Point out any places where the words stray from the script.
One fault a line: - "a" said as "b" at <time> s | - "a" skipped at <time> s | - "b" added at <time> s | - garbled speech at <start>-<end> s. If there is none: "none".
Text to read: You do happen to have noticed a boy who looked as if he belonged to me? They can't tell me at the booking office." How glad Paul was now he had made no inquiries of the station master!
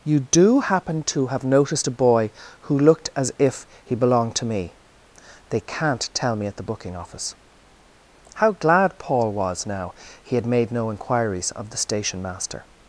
none